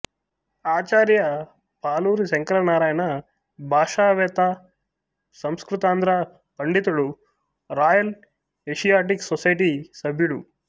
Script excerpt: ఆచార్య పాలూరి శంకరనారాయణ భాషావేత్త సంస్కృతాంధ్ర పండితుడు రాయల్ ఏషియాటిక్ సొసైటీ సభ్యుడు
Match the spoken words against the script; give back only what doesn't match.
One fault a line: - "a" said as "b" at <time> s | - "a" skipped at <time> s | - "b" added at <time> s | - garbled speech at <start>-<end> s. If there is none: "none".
none